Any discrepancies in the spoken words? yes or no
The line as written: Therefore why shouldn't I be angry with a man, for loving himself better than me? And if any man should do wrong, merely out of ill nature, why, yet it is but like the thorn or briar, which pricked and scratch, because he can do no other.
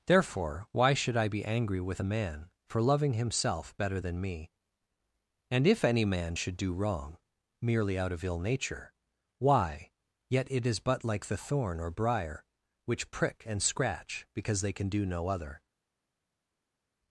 yes